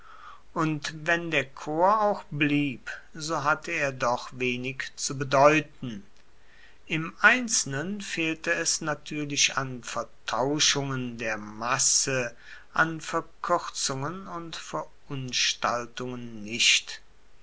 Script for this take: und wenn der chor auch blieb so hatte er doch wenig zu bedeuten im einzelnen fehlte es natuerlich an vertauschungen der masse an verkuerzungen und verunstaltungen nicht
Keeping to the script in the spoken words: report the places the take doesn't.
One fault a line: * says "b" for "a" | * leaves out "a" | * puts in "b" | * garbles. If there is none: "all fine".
all fine